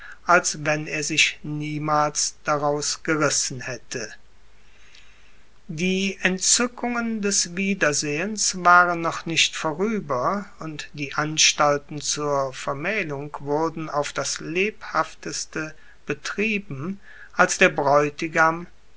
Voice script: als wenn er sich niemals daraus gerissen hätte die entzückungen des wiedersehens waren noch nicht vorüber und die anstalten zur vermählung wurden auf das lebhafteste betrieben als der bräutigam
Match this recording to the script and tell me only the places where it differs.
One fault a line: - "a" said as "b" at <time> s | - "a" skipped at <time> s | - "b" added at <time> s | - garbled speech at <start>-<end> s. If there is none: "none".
none